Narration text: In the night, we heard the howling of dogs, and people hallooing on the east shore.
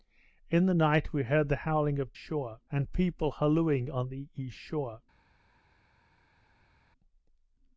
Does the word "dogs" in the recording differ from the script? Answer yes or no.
yes